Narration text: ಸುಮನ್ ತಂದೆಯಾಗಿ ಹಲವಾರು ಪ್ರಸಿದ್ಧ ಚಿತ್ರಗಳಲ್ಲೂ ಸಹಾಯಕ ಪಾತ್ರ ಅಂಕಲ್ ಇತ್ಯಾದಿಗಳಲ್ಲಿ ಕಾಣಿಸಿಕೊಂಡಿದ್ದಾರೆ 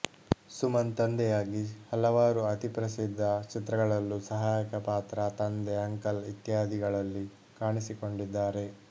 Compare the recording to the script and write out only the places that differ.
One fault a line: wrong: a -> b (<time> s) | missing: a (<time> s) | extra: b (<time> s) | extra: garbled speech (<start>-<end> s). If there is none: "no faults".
extra: ಅತಿ (2.5 s)
extra: ತಂದೆ (5.4 s)